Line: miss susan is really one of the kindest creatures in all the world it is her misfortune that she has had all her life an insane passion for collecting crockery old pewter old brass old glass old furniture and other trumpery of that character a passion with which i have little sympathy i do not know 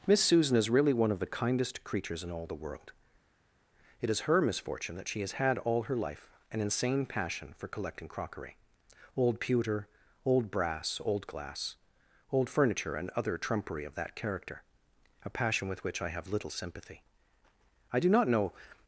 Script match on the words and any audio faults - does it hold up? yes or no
yes